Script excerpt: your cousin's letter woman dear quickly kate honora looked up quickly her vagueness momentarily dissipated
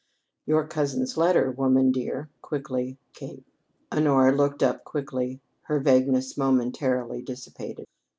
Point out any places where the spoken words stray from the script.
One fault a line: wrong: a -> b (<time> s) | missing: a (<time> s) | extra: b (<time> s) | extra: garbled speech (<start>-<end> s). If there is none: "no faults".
no faults